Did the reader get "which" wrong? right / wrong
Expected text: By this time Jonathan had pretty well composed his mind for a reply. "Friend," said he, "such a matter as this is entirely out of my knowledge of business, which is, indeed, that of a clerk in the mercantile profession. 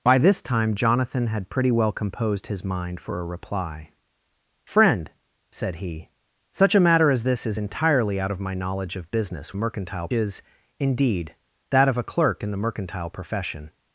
wrong